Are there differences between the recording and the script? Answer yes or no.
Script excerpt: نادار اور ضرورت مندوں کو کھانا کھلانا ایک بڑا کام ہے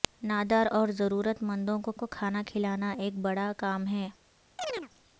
yes